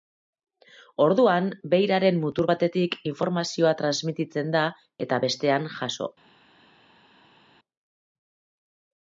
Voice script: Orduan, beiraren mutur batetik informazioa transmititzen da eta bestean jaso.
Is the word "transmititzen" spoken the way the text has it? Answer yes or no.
yes